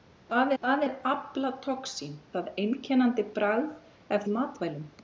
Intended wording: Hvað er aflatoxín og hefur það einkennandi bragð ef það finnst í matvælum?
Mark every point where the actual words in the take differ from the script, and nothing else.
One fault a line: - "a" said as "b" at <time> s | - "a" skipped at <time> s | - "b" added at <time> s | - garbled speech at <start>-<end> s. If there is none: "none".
- "hvað" added at 0.6 s
- "og hefur" skipped at 2.1 s
- "það finnst" skipped at 4.3 s